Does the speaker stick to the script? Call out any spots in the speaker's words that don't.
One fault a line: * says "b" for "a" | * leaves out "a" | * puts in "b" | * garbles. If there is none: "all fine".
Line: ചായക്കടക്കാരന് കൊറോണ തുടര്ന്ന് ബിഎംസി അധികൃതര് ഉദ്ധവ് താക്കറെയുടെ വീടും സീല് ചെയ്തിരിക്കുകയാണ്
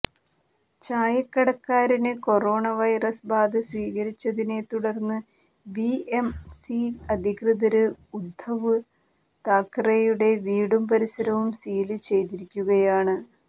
* puts in "വൈറസ് ബാധ സ്ഥിരീകരിച്ചതിനെ"
* puts in "പരിസരവും"